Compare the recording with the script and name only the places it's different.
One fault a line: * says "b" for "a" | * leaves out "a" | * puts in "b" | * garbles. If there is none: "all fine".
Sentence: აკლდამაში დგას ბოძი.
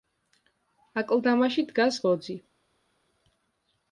all fine